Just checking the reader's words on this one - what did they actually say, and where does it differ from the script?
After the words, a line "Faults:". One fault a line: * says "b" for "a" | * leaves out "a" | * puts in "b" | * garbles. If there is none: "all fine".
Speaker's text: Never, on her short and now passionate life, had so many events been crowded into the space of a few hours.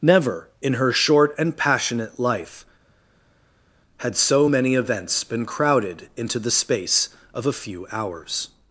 Never, in her short and passionate life, had so many events been crowded into the space of a few hours.
Faults:
* says "in" for "on"
* leaves out "now"